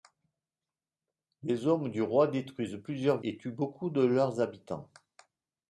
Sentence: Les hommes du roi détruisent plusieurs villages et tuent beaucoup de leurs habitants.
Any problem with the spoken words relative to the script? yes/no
yes